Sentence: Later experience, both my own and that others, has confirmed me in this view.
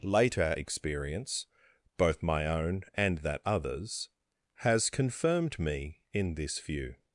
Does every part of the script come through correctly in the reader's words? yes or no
yes